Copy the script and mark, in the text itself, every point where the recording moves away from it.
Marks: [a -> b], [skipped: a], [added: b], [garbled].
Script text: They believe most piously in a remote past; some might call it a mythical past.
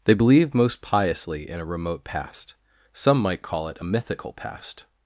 They believe most piously in a remote past; some might call it a mythical past.